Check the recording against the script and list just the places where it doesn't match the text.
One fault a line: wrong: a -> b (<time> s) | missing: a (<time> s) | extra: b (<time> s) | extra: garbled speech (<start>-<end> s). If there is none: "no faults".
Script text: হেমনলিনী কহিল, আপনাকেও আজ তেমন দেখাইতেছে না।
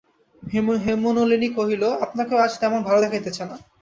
extra: ভালো (2.9 s)